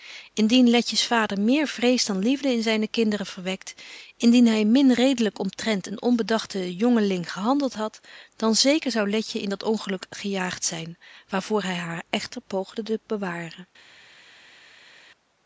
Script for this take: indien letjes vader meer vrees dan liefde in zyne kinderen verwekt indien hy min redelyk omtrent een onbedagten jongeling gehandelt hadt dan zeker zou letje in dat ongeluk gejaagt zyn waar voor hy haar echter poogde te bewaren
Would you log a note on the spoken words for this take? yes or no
no